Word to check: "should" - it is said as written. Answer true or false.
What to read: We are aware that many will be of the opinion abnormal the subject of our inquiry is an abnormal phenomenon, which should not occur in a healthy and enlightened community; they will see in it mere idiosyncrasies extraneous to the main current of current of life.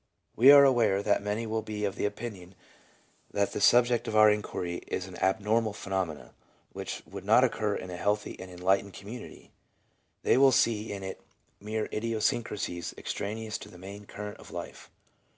false